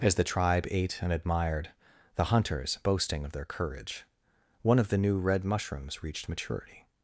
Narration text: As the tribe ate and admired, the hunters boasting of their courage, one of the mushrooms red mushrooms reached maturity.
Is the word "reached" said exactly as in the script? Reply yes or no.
yes